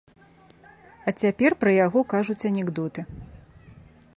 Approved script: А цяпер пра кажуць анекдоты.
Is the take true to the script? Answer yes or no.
no